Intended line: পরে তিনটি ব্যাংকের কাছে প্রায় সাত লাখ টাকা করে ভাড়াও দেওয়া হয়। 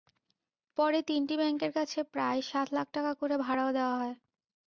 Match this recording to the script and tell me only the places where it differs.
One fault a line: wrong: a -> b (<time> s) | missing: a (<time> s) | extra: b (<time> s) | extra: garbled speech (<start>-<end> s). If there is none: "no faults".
no faults